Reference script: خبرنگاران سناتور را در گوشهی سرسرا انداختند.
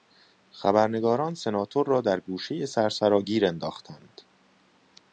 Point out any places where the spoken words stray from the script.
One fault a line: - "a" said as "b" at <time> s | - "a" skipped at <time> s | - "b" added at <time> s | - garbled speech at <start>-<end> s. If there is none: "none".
- "گیر" added at 3.2 s